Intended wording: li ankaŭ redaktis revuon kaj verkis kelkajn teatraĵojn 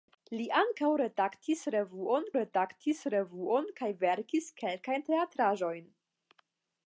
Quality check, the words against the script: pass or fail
fail